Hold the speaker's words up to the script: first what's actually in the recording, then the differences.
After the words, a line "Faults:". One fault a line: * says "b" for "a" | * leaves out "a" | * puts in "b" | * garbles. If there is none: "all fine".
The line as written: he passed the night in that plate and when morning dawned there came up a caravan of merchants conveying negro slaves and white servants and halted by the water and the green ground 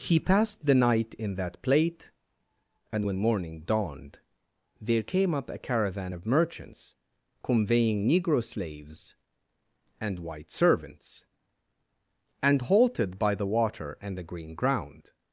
he passed the night in that plate and when morning dawned there came up a caravan of merchants conveying negro slaves and white servants and halted by the water and the green ground
Faults:
all fine